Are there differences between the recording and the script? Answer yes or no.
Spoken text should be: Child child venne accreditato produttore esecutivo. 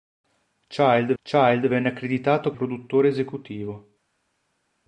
no